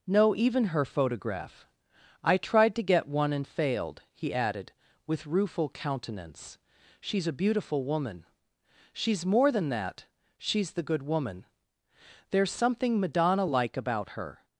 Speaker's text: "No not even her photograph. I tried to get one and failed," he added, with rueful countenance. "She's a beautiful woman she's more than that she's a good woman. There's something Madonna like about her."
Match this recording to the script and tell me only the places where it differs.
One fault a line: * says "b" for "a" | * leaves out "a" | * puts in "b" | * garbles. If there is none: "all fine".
* leaves out "not"
* says "the" for "a"